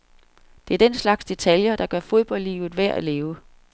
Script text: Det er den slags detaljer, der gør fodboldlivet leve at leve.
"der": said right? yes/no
yes